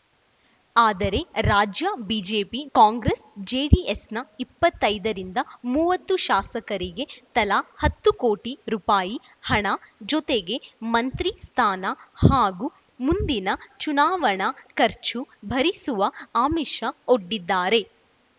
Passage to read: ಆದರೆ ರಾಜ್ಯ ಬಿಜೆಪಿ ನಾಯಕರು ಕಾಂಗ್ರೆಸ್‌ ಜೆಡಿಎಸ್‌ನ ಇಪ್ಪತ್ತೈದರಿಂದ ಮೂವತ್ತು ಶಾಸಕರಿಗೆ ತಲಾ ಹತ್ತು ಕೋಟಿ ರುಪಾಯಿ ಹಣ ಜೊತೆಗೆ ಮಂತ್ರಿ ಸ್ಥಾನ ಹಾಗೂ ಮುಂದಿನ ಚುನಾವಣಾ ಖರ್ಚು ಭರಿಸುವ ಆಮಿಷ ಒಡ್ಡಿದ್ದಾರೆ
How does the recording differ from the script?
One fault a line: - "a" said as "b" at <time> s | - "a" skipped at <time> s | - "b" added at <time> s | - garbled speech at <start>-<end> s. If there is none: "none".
- "ನಾಯಕರು" skipped at 2.6 s